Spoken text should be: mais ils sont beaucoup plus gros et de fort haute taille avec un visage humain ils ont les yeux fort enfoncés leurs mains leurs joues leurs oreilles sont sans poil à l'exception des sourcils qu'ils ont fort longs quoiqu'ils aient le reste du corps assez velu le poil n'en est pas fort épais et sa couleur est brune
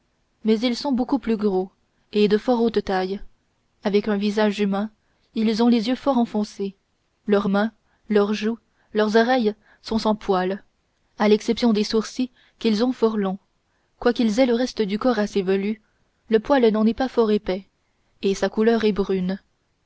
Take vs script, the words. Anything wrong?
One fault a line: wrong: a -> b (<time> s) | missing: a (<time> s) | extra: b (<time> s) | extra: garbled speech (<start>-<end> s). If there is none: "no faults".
no faults